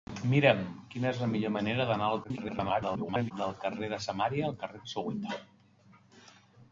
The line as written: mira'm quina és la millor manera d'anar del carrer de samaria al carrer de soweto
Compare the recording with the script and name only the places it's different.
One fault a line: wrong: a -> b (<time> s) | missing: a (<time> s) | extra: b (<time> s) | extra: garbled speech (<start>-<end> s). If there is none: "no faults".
extra: garbled speech (2.2-3.3 s)